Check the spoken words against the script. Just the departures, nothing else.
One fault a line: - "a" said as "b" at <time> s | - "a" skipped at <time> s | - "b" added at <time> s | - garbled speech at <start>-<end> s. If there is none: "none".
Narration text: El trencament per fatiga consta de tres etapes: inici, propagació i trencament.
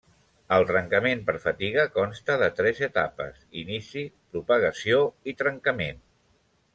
none